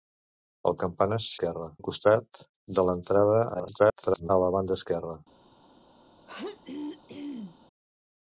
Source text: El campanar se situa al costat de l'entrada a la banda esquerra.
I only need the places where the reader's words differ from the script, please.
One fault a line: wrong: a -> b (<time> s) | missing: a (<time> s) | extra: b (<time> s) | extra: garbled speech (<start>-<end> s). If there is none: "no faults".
wrong: situa -> esquerra (1.3 s)
extra: garbled speech (3.5-4.3 s)